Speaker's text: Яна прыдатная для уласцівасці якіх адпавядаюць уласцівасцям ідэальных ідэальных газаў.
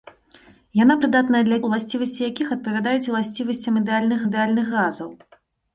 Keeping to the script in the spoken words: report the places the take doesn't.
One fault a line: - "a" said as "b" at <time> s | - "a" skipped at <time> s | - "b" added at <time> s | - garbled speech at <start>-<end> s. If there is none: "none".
none